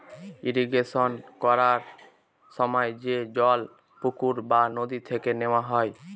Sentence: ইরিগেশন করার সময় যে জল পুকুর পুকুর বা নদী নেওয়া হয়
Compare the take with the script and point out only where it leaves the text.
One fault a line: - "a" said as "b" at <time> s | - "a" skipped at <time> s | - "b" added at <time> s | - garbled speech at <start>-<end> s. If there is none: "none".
- "পুকুর" skipped at 4.3 s
- "থেকে" added at 5.1 s